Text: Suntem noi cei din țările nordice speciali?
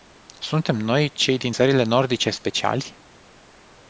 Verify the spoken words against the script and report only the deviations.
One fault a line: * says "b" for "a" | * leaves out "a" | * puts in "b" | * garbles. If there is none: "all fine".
all fine